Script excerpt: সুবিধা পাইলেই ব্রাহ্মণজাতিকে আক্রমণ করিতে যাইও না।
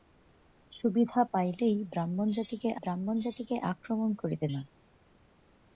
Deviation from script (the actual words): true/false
true